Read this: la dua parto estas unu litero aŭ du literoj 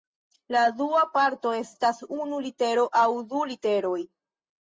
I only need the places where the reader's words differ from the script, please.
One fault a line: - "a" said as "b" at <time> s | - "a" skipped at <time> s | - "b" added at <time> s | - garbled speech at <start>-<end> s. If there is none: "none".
none